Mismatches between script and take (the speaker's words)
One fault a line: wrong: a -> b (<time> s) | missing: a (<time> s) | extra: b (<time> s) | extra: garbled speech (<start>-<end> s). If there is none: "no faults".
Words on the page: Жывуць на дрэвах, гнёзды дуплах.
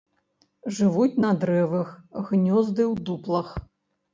extra: ў (2.9 s)